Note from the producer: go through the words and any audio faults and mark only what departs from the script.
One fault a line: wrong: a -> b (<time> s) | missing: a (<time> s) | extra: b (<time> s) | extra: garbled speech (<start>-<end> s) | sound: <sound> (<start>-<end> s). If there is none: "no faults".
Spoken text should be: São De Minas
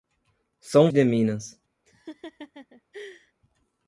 sound: laugh (1.9-3.3 s)